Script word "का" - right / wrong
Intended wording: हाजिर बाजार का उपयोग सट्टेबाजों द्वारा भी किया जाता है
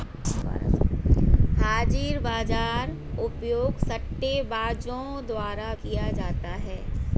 wrong